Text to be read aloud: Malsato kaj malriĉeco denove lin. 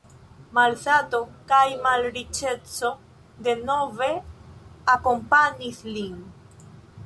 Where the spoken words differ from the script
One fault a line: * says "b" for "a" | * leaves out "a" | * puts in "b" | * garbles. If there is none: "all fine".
* puts in "akompanis"